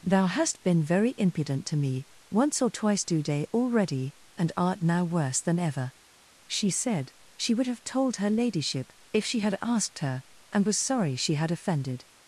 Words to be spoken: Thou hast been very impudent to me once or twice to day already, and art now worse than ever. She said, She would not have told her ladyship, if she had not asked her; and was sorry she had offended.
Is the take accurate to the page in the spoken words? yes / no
no